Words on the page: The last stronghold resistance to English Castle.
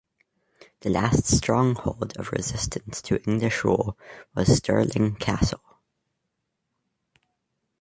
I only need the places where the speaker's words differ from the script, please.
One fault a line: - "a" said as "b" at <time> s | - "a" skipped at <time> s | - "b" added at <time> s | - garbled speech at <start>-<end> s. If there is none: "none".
- "of" added at 2.2 s
- "rule was Stirling" added at 3.6 s